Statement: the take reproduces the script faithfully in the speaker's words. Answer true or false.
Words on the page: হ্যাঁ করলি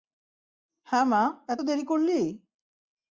false